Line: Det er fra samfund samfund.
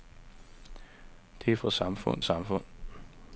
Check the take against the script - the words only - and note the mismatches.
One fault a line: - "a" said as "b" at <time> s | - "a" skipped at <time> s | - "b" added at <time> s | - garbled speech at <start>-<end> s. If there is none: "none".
none